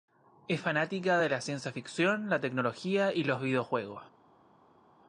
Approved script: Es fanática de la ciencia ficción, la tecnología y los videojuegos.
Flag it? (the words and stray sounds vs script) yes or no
no